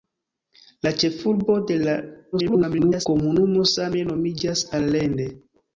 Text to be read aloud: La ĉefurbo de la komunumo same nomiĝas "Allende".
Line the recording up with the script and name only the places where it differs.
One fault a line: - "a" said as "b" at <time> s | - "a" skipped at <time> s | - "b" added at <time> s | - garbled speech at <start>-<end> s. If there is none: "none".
- garbled speech at 2.3-3.1 s